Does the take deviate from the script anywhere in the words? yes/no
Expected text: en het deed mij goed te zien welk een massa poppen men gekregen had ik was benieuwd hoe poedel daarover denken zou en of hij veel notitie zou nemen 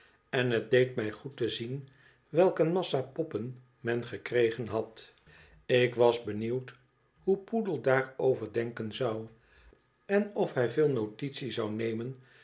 no